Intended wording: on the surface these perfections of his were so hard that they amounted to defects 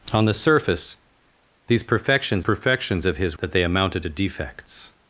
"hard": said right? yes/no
no